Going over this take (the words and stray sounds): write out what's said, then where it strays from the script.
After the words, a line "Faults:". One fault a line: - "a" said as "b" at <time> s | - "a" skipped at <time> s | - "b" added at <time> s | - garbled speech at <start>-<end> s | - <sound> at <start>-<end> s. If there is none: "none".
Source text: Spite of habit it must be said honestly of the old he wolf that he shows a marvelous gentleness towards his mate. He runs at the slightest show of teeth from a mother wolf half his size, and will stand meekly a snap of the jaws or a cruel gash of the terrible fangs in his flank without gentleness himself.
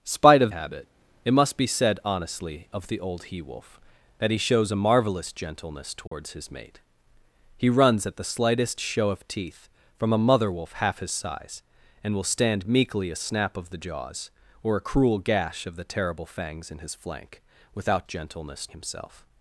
Spite of habit it must be said honestly of the old he wolf that he shows a marvelous gentleness towards his mate. He runs at the slightest show of teeth from a mother wolf half his size, and will stand meekly a snap of the jaws or a cruel gash of the terrible fangs in his flank without gentleness himself.
Faults:
- dropout at 6.1-6.1 s